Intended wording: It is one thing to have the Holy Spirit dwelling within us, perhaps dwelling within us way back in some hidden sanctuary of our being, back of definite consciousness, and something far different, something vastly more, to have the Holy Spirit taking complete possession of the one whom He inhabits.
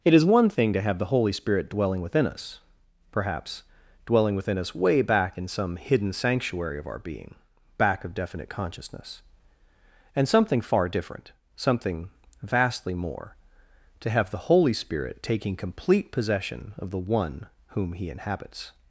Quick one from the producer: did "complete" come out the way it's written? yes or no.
yes